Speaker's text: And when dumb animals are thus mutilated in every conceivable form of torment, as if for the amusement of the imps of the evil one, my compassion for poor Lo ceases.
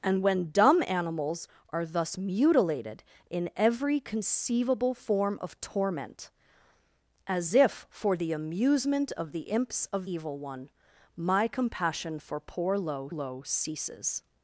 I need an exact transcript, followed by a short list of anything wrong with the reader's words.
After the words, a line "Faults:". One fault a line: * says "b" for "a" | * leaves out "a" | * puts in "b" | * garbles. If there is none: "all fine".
And when dumb animals are thus mutilated in every conceivable form of torment, as if for the amusement of the imps of evil one, my compassion for poor Lo Lo ceases.
Faults:
* leaves out "the"
* puts in "Lo"